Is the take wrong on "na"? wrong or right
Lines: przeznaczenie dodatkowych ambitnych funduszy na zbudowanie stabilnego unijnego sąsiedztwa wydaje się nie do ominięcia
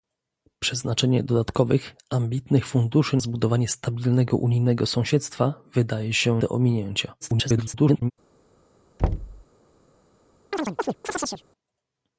wrong